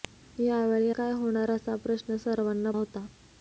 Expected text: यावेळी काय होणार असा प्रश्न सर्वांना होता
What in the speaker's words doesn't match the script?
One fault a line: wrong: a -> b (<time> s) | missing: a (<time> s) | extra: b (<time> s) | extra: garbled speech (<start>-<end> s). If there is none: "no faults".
no faults